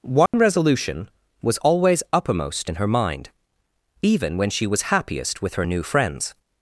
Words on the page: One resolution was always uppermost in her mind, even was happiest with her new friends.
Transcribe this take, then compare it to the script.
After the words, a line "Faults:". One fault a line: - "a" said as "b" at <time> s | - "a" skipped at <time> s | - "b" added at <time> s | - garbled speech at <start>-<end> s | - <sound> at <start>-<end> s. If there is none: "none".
One resolution was always uppermost in her mind, even when she was happiest with her new friends.
Faults:
- dropout at 0.3-0.3 s
- "when she" added at 4.4 s